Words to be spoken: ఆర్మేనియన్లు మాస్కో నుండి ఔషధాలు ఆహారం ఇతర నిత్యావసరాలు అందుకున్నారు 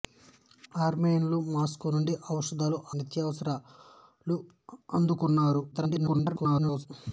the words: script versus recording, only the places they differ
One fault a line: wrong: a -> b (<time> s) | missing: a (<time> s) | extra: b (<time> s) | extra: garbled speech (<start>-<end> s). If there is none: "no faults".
missing: ఆహారం ఇతర (2.8 s)
extra: garbled speech (5.7-6.9 s)